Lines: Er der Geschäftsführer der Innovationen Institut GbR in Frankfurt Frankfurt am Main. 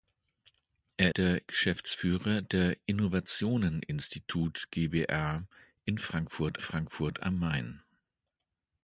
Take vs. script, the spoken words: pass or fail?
pass